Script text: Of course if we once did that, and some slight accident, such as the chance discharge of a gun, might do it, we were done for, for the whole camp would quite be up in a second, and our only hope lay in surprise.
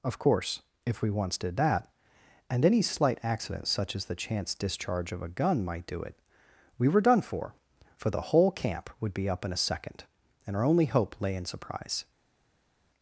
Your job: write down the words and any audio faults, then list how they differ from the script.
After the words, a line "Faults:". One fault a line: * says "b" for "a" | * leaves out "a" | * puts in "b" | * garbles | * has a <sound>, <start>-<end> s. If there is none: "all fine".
Of course if we once did that, and any slight accident, such as the chance discharge of a gun, might do it, we were done for, for the whole camp would be up in a second, and our only hope lay in surprise.
Faults:
* says "any" for "some"
* leaves out "quite"